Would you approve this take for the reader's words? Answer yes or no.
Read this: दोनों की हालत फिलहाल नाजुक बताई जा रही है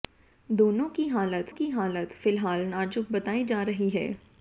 no